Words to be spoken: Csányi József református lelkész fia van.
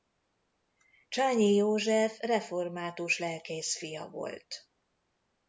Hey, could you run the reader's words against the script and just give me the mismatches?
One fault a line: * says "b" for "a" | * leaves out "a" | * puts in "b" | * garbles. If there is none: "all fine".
* says "volt" for "van"